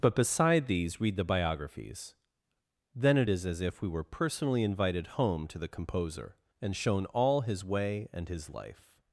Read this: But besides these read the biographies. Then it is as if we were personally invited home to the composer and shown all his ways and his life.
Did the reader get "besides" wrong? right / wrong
wrong